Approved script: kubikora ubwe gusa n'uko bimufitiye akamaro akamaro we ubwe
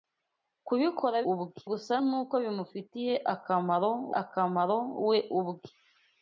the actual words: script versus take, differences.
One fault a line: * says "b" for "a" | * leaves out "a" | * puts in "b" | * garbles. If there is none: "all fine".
all fine